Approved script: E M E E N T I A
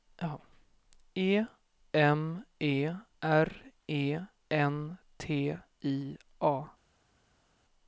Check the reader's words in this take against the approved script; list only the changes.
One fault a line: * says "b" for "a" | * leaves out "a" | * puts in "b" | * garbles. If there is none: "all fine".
* puts in "R"